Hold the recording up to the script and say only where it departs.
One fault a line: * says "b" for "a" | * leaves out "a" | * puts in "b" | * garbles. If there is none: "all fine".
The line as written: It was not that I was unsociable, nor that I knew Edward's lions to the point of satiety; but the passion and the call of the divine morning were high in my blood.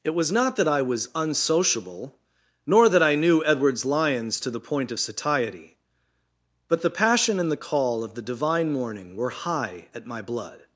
* says "at" for "in"